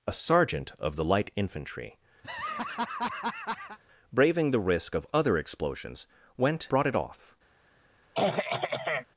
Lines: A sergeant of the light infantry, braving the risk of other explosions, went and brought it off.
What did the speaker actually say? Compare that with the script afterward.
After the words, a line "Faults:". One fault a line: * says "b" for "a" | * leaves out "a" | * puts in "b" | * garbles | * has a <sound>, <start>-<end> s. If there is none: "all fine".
A sergeant of the light infantry, braving the risk of other explosions, went brought it off.
Faults:
* has a laugh, 2.2-3.8 s
* leaves out "and"
* has a throat clearing, 8.1-9.1 s